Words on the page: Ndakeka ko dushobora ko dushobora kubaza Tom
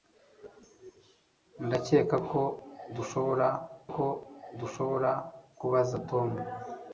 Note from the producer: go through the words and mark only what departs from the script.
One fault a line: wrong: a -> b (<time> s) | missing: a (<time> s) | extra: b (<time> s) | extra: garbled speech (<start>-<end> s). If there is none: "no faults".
no faults